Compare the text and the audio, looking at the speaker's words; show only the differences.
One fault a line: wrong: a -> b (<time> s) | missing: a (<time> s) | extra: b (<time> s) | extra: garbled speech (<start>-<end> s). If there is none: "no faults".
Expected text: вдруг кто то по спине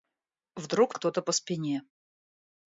no faults